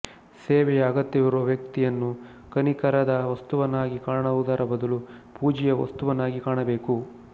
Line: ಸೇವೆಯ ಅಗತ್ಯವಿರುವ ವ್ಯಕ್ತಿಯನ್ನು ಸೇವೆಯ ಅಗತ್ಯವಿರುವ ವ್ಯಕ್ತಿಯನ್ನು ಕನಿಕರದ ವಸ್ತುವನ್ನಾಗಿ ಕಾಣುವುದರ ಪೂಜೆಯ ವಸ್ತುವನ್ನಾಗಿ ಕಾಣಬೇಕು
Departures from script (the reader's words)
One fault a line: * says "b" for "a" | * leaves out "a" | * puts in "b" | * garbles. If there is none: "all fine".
* leaves out "ಸೇವೆಯ ಅಗತ್ಯವಿರುವ ವ್ಯಕ್ತಿಯನ್ನು"
* puts in "ಬದಲು"